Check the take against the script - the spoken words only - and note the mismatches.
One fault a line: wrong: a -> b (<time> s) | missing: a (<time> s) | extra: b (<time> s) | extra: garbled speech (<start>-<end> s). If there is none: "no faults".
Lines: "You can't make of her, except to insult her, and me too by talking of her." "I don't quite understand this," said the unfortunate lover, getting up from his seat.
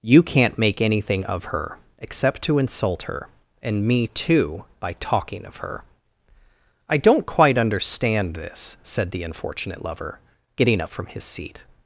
extra: anything (0.8 s)